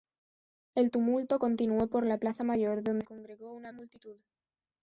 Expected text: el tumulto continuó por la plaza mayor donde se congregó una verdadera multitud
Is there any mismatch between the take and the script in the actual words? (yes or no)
yes